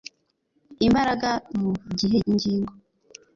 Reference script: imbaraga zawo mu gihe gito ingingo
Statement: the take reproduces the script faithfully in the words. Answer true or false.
false